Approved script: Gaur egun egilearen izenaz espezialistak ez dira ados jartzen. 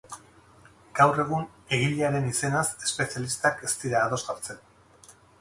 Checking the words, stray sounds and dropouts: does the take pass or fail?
pass